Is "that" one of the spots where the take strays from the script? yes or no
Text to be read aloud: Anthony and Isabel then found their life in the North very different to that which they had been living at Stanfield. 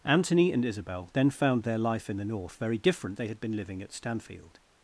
yes